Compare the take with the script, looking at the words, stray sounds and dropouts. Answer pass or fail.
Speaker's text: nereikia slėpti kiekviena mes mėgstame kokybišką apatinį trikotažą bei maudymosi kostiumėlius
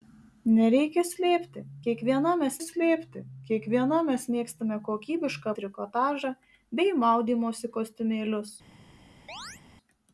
fail